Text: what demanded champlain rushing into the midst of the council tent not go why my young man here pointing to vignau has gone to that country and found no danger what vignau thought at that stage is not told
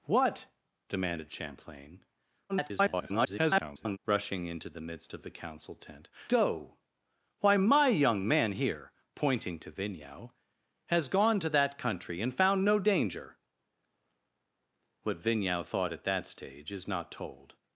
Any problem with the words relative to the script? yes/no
yes